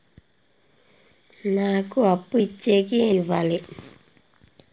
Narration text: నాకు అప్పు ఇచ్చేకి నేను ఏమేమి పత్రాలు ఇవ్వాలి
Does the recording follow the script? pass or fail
fail